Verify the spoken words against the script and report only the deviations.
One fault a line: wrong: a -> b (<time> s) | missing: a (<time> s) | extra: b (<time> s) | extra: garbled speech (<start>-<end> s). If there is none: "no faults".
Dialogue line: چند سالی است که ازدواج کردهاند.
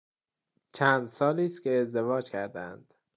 no faults